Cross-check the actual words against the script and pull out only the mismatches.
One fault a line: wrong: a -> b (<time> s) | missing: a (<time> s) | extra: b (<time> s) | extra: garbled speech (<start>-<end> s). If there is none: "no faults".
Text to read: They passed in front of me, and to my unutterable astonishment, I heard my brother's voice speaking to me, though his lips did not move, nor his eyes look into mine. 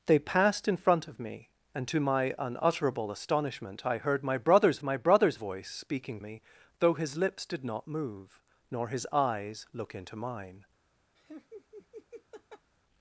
extra: my brother's (4.8 s)
missing: to (6.2 s)